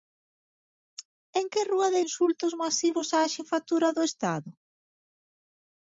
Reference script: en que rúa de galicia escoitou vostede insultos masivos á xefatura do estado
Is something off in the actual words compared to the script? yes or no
yes